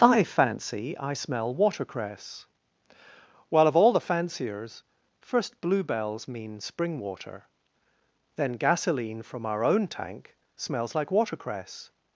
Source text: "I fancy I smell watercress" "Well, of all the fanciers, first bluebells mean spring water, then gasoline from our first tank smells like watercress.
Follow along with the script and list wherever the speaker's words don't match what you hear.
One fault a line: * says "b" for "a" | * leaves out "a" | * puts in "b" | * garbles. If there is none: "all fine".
* says "own" for "first"